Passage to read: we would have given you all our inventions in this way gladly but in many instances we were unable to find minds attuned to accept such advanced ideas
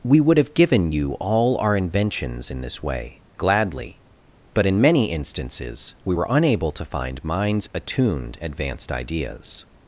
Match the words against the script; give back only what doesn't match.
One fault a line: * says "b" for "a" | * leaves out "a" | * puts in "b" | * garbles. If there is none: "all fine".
* leaves out "to accept such"